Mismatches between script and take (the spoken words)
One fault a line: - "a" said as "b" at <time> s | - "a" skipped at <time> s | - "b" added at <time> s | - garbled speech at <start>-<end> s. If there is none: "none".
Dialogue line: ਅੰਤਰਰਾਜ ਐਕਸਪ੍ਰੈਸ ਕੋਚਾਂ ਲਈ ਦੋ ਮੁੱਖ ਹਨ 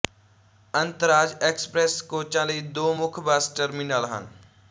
- "ਬੱਸ ਟਰਮੀਨਲ" added at 3.2 s